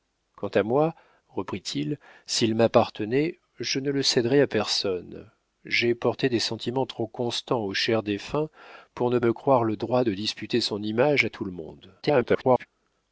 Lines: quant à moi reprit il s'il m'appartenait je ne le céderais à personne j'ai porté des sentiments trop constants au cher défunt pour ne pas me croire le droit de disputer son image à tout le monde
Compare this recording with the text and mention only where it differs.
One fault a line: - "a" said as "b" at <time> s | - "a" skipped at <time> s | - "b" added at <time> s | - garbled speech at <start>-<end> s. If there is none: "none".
- "pas" skipped at 9.2 s
- garbled speech at 12.0-12.7 s